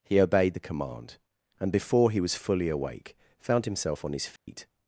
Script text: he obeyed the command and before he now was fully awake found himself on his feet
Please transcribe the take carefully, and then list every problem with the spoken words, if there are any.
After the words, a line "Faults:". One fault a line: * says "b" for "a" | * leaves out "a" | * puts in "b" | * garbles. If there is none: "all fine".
he obeyed the command and before he was fully awake found himself on his feet
Faults:
* leaves out "now"